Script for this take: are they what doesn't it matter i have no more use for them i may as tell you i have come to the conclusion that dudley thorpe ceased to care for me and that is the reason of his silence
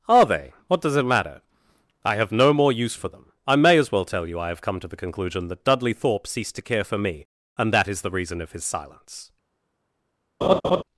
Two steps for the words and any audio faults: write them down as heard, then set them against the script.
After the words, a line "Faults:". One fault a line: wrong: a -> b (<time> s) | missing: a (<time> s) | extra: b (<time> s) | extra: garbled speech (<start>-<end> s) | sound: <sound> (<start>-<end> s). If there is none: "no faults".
are they what does it matter i have no more use for them i may as well tell you i have come to the conclusion that dudley thorpe ceased to care for me and that is the reason of his silence
Faults:
wrong: doesn't -> does (0.8 s)
extra: well (3.9 s)
sound: laugh (10.4-10.8 s)